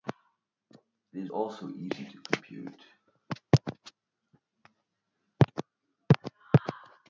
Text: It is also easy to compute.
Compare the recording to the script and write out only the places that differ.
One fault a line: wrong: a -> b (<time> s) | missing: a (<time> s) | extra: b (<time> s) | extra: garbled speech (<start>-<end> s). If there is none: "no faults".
no faults